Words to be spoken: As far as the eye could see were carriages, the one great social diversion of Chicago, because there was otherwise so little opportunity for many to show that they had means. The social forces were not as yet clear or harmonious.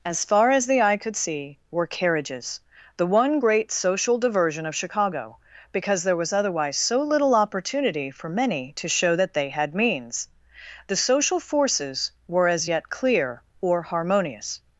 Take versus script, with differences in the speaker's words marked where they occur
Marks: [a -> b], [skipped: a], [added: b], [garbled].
As far as the eye could see were carriages, the one great social diversion of Chicago, because there was otherwise so little opportunity for many to show that they had means. The social forces were [skipped: not] as yet clear or harmonious.